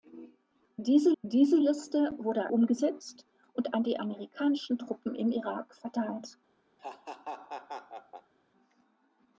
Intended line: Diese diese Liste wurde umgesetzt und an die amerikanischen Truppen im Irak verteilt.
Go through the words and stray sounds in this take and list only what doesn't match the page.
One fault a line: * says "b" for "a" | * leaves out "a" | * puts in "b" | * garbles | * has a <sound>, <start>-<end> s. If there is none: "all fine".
* has a laugh, 6.8-8.3 s